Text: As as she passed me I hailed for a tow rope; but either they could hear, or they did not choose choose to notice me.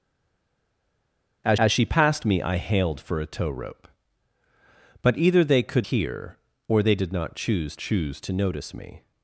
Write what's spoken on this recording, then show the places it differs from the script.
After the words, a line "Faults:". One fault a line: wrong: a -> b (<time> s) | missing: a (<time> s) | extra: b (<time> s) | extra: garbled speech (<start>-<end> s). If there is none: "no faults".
As as she passed me I hailed for a tow rope; but either they could hear, or they did not choose choose to notice me.
Faults:
no faults